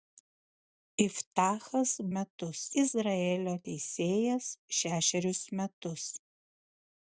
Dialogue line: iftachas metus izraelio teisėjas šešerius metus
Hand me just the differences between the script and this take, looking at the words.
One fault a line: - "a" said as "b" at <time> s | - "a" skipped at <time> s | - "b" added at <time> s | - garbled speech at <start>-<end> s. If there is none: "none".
none